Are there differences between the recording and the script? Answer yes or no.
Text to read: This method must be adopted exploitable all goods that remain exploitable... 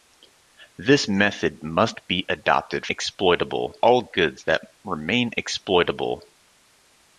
no